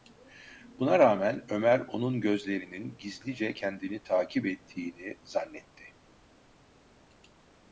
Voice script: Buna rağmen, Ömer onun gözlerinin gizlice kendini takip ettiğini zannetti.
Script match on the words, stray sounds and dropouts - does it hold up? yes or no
yes